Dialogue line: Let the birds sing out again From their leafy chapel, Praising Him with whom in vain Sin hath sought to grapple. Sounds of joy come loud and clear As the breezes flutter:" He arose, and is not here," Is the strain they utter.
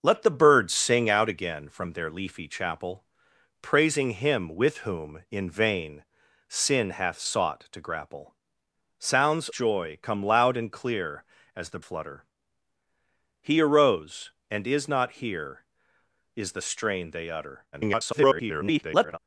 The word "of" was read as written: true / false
false